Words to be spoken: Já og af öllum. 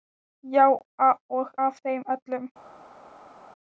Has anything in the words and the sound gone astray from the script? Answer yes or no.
yes